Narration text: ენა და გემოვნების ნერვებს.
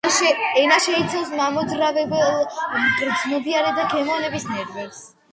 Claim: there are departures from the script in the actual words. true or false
true